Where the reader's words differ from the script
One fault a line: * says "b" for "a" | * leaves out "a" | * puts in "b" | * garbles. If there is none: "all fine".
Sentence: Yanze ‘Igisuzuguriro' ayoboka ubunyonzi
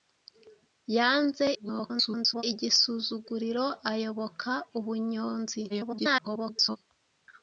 * garbles
* garbles